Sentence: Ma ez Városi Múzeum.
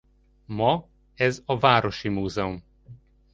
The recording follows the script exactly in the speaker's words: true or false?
false